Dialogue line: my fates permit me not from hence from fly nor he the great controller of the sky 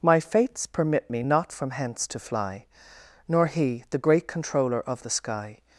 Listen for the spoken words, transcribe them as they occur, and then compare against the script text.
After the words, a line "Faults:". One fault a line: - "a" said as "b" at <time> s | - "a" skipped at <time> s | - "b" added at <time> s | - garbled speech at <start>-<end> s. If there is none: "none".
my fates permit me not from hence to fly nor he the great controller of the sky
Faults:
- "from" said as "to" at 2.1 s